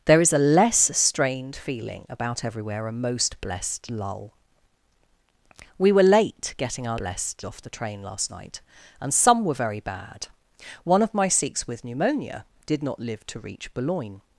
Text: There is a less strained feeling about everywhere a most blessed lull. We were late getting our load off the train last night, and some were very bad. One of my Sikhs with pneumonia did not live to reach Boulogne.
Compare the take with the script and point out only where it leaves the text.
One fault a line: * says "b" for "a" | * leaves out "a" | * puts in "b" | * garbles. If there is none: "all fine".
* says "blessed" for "load"